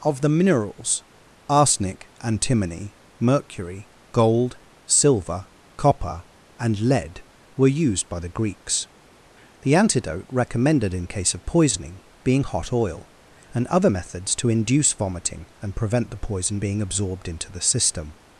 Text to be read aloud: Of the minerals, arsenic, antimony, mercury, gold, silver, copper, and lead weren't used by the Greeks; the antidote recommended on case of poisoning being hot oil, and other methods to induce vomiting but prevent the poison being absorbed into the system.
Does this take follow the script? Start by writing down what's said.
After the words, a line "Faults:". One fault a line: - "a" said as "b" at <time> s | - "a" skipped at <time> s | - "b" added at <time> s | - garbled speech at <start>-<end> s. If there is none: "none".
Of the minerals, arsenic, antimony, mercury, gold, silver, copper, and lead were used by the Greeks; the antidote recommended in case of poisoning being hot oil, and other methods to induce vomiting and prevent the poison being absorbed into the system.
Faults:
- "weren't" said as "were" at 7.6 s
- "on" said as "in" at 10.9 s
- "but" said as "and" at 15.6 s